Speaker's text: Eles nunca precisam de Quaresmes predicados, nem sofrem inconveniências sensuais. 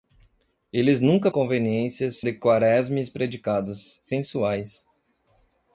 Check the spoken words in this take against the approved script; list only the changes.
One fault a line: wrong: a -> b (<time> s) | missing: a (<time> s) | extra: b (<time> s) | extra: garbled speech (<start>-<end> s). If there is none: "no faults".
wrong: precisam -> inconveniências (1.3 s)
missing: nem sofrem inconveniências (4.0 s)